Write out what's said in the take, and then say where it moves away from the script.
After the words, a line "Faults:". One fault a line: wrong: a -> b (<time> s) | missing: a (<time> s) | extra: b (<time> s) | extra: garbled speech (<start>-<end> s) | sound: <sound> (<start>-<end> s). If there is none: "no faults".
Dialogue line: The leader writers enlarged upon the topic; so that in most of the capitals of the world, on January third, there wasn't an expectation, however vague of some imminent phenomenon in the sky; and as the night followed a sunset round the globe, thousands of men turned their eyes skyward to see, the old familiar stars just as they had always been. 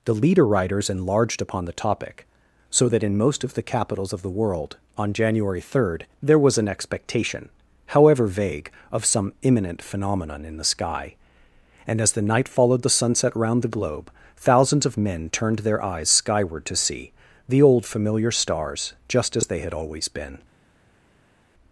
The leader writers enlarged upon the topic; so that in most of the capitals of the world, on January third, there was an expectation, however vague of some imminent phenomenon in the sky; and as the night followed the sunset round the globe, thousands of men turned their eyes skyward to see, the old familiar stars just as they had always been.
Faults:
wrong: wasn't -> was (6.4 s)
wrong: a -> the (12.8 s)